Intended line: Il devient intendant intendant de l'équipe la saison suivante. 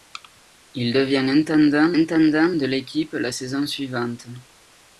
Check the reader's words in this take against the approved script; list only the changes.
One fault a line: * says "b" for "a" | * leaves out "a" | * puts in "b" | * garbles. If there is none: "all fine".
all fine